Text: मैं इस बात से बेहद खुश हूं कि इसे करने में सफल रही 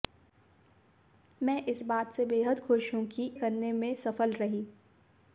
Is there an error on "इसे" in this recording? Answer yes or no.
yes